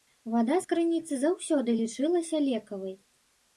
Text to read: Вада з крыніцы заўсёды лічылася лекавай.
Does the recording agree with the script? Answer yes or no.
yes